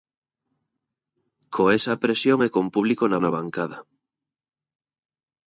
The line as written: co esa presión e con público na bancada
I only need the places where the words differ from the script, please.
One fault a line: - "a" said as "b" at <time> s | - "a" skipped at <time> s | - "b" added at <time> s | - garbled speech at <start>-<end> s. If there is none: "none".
- "na" added at 3.2 s